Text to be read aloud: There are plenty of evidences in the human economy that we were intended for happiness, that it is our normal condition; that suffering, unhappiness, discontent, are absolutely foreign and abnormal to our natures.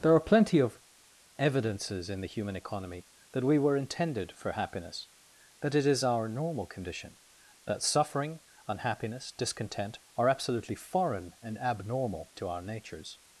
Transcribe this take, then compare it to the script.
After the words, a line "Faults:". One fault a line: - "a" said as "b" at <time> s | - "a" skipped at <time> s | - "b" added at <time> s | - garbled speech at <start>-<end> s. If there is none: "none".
There are plenty of evidences in the human economy that we were intended for happiness, that it is our normal condition; that suffering, unhappiness, discontent, are absolutely foreign and abnormal to our natures.
Faults:
none